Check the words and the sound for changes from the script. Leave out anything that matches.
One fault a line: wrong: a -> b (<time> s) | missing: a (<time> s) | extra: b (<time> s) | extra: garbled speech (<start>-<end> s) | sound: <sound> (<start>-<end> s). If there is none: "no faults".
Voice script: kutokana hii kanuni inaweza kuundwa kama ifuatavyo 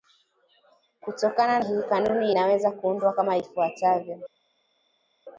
no faults